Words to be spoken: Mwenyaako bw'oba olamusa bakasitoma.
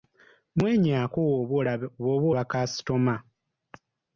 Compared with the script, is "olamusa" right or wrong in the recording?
wrong